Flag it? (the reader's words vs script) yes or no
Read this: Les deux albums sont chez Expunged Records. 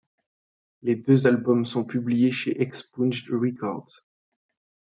yes